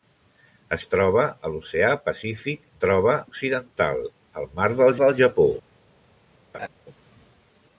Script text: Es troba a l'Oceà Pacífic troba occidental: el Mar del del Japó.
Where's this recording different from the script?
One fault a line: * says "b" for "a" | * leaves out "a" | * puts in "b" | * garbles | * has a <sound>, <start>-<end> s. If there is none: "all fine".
* has a laugh, 6.5-6.7 s